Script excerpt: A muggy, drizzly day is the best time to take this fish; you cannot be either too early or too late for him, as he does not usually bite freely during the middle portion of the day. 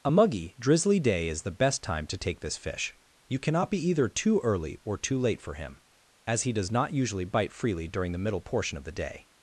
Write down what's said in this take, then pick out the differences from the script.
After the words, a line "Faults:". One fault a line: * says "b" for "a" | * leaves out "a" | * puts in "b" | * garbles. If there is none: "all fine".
A muggy, drizzly day is the best time to take this fish; you cannot be either too early or too late for him, as he does not usually bite freely during the middle portion of the day.
Faults:
all fine